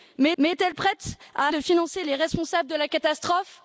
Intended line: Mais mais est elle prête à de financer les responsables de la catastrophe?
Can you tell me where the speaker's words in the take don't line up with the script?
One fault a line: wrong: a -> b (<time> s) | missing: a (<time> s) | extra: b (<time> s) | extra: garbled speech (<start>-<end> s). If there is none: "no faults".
no faults